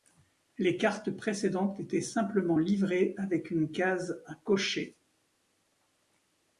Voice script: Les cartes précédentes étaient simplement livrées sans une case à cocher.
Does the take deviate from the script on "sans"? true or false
true